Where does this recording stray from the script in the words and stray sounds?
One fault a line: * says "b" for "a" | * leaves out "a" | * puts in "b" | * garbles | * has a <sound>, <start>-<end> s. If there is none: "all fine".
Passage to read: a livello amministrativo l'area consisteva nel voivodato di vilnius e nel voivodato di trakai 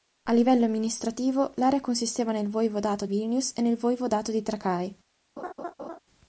* leaves out "di"
* has a laugh, 5.4-6.0 s